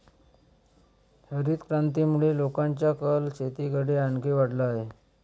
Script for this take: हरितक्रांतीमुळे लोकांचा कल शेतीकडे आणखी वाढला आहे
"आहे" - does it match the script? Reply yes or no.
yes